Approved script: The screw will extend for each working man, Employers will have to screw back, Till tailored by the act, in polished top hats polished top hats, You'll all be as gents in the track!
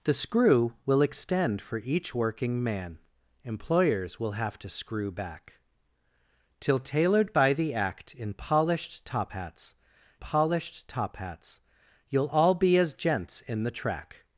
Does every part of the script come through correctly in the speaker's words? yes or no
yes